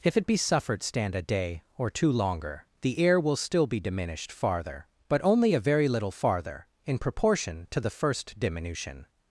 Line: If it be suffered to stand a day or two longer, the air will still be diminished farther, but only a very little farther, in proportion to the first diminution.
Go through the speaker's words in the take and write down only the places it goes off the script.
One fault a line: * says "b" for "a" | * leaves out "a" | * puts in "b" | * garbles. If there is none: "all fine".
* leaves out "to"